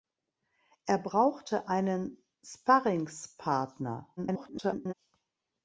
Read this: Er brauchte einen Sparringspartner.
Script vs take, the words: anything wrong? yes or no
yes